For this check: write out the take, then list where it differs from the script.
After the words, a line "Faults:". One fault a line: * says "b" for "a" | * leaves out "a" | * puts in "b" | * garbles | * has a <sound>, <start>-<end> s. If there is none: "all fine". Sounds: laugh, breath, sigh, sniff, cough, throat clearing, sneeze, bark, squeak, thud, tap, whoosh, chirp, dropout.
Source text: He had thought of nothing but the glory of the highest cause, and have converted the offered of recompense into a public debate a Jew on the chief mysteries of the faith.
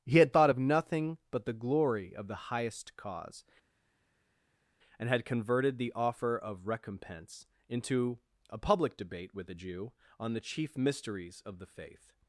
He had thought of nothing but the glory of the highest cause, and had converted the offer of recompense into a public debate with a Jew on the chief mysteries of the faith.
Faults:
* says "had" for "have"
* says "offer" for "offered"
* puts in "with"